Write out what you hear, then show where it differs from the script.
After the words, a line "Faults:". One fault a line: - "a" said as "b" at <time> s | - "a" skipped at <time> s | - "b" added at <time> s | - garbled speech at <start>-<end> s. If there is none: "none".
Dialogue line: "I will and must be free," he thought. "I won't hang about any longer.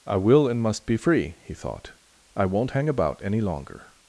"I will and must be free," he thought. "I won't hang about any longer.
Faults:
none